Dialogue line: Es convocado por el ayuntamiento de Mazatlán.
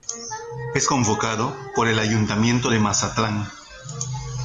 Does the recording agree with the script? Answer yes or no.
yes